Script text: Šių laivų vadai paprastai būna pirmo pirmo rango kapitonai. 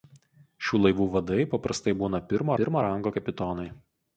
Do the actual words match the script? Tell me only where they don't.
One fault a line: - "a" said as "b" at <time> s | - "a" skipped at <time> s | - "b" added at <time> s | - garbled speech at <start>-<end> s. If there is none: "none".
none